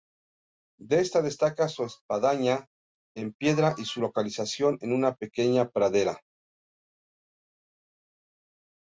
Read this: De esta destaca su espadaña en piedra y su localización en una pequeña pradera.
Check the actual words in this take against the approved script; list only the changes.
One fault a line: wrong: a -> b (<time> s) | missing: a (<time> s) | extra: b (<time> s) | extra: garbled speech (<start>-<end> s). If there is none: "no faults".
no faults